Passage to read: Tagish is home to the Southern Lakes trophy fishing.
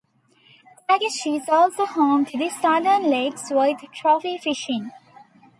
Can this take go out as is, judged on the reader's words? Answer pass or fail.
fail